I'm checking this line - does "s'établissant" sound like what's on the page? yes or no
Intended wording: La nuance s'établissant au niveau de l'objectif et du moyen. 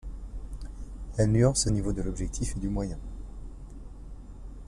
no